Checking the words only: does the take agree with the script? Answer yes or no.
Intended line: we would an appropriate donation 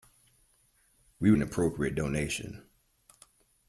yes